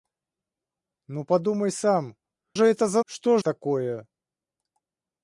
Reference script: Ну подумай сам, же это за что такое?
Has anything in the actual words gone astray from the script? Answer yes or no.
no